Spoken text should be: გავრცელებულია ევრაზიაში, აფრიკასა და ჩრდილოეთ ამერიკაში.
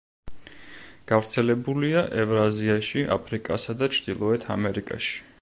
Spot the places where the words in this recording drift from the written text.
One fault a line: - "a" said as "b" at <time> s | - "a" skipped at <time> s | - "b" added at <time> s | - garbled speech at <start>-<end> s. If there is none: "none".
none